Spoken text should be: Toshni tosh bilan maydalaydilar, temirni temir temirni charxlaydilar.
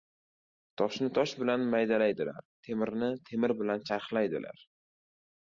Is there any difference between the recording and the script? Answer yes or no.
yes